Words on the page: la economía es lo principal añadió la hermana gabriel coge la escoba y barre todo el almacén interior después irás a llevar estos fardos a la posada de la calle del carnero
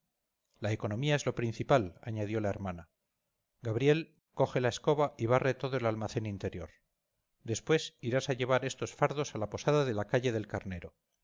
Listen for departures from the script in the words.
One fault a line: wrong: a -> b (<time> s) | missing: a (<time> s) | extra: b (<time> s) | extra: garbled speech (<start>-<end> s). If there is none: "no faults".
no faults